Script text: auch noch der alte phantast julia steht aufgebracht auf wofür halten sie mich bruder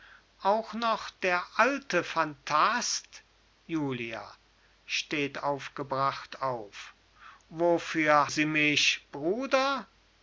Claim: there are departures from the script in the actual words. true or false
true